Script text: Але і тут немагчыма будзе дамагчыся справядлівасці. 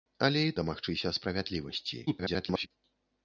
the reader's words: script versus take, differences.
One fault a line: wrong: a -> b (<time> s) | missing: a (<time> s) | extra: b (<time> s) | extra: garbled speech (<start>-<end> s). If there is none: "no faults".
missing: тут немагчыма будзе (0.5 s)
extra: garbled speech (2.1-2.7 s)